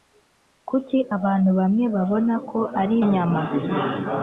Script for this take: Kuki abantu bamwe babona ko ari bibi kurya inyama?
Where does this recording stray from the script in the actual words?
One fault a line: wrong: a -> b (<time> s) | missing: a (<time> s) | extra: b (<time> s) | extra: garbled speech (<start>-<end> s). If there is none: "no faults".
missing: bibi kurya (2.9 s)